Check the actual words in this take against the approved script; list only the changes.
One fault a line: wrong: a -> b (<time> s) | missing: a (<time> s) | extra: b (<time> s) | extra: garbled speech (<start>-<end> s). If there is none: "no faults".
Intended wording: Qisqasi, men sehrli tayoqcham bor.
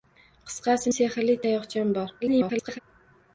missing: men (0.9 s)
extra: garbled speech (2.2-2.8 s)